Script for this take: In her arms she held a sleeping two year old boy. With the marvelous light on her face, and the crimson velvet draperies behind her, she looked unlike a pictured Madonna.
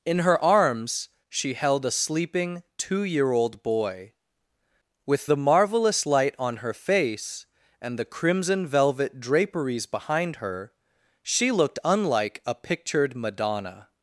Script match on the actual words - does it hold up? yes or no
yes